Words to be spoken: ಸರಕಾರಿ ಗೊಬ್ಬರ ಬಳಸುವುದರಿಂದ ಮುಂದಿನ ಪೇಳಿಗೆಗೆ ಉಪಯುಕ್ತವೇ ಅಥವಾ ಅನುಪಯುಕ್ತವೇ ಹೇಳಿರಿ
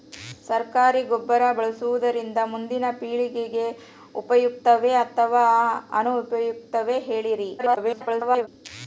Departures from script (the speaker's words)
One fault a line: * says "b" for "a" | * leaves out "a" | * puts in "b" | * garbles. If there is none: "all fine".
* garbles